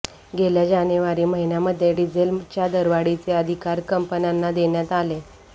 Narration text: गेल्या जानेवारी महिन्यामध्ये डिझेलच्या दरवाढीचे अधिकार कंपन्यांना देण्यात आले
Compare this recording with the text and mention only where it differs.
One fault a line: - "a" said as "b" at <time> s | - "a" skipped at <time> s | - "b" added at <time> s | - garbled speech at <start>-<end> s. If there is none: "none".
none